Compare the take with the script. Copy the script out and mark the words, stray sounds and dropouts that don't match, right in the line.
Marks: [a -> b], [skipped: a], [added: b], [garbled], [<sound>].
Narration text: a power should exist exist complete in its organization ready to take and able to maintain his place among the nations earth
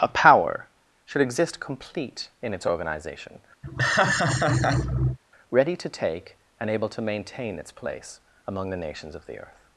a power should exist [skipped: exist] complete in its organization [laugh] ready to take and able to maintain [his -> its] place among the nations [added: of the] earth